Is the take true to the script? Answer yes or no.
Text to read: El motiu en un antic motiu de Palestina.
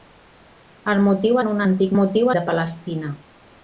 yes